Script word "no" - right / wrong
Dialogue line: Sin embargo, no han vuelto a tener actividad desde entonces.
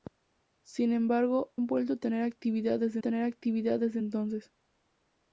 wrong